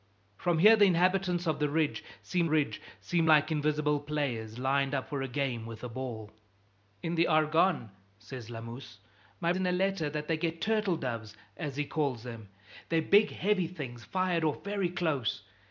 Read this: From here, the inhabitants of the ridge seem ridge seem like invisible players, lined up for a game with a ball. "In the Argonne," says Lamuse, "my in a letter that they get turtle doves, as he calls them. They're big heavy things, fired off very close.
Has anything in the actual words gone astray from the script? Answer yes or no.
no